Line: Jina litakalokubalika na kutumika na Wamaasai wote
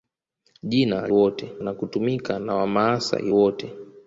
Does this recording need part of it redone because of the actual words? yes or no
yes